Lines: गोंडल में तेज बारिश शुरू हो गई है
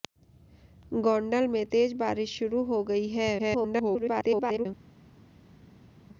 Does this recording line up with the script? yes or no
no